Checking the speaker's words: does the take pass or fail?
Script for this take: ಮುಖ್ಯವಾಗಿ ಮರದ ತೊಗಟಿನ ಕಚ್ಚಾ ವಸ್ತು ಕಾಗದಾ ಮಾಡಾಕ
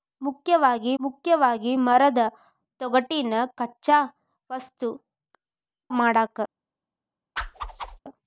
fail